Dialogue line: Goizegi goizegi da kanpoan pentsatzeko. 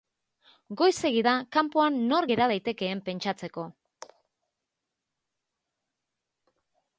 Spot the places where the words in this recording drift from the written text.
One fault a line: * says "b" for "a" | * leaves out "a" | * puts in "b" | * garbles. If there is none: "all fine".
* leaves out "goizegi"
* puts in "nor gera daitekeen"